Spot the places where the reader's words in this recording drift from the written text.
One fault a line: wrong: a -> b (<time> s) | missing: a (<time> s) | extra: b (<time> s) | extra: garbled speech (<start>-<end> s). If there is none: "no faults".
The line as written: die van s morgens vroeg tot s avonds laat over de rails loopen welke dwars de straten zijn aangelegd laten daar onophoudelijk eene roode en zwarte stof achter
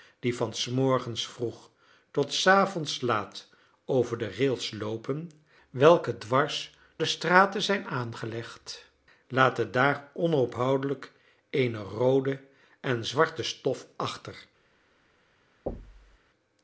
no faults